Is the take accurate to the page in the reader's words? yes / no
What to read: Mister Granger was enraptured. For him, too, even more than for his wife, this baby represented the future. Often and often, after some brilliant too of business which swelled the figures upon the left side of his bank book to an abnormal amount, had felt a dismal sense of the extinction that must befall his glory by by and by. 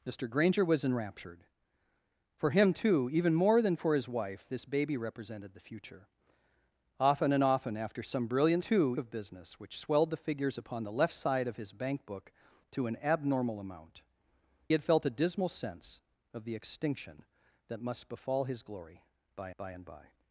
yes